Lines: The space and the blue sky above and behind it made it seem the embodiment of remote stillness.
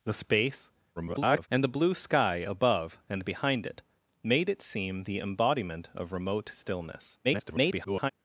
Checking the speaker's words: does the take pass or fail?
fail